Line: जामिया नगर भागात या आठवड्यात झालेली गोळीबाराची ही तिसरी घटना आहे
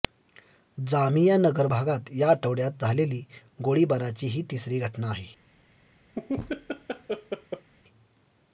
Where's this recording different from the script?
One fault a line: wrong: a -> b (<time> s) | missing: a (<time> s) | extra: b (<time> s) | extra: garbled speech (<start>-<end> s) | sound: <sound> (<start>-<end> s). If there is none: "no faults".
sound: laugh (6.1-7.7 s)